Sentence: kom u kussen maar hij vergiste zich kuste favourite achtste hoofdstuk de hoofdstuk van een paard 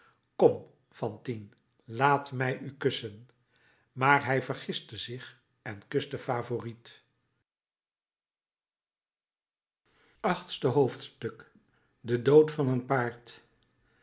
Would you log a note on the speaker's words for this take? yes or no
yes